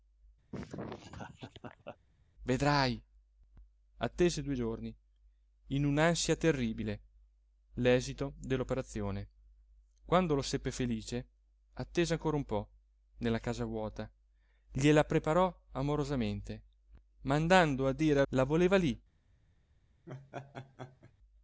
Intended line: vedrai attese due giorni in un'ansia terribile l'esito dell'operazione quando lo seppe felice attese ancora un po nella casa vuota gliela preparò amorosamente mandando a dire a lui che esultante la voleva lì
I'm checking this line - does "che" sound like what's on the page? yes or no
no